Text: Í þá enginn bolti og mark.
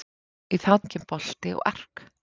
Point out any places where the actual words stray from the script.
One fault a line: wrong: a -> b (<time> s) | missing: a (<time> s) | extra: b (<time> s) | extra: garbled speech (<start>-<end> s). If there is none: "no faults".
no faults